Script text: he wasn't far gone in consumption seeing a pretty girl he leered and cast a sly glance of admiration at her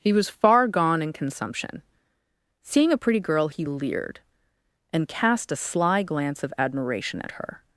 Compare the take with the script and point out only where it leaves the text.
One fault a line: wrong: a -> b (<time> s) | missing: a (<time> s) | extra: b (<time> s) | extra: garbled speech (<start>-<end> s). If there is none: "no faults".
wrong: wasn't -> was (0.1 s)